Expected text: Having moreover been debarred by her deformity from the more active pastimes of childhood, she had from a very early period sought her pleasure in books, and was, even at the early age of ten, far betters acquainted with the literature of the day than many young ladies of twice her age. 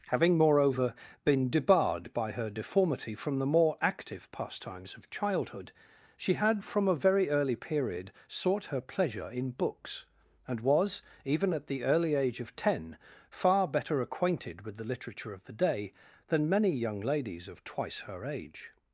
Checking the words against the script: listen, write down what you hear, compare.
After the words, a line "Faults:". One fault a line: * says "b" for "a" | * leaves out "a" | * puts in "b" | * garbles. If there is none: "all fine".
Having moreover been debarred by her deformity from the more active pastimes of childhood, she had from a very early period sought her pleasure in books, and was, even at the early age of ten, far better acquainted with the literature of the day than many young ladies of twice her age.
Faults:
* says "better" for "betters"